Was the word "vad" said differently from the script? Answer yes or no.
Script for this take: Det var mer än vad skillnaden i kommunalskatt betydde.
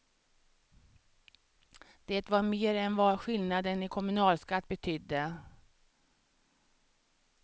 no